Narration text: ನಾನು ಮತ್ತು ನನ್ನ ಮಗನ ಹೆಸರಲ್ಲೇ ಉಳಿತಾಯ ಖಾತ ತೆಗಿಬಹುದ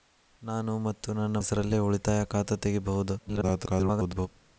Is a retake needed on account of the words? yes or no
yes